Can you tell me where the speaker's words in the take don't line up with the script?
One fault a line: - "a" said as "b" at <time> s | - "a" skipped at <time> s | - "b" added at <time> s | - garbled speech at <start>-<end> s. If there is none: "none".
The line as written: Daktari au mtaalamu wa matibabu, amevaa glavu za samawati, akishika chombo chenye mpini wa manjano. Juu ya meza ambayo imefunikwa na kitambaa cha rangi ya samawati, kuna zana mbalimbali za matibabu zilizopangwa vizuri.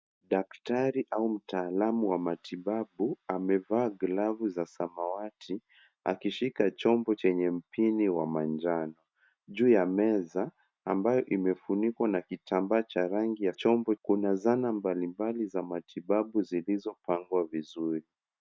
- "samawati" said as "chombo" at 13.5 s